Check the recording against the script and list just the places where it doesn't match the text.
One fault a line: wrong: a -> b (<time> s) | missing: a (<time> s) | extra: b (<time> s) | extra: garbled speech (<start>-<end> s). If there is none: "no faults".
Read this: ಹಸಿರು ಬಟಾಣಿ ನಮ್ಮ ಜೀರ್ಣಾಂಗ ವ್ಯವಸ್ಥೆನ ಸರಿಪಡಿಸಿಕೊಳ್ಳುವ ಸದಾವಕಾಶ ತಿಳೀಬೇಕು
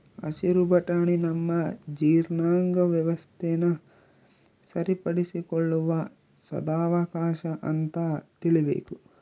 extra: ಅಂತ (7.7 s)